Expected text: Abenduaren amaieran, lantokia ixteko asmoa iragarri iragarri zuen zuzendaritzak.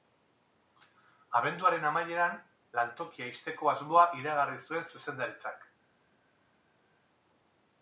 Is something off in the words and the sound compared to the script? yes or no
yes